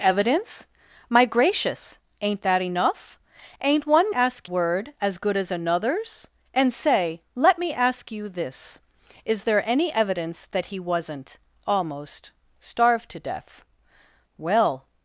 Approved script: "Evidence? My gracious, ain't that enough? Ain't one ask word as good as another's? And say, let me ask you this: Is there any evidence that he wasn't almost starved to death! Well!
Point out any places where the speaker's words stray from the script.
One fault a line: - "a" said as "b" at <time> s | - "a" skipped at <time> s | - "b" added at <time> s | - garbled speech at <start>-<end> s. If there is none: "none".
none